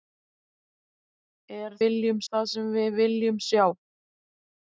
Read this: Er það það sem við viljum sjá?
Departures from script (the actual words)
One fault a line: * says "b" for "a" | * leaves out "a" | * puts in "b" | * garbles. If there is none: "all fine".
* says "viljum" for "það"